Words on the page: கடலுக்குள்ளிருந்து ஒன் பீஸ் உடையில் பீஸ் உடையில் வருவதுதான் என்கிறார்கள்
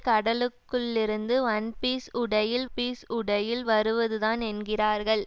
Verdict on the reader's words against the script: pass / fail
pass